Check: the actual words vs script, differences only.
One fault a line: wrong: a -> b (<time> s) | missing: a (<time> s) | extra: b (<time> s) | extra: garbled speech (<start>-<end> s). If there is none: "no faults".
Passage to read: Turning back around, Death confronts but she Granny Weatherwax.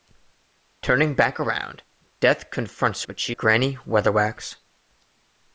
no faults